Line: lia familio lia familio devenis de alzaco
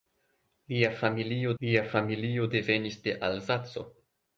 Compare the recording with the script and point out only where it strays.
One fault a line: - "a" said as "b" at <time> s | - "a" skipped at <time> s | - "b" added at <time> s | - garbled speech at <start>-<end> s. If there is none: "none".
none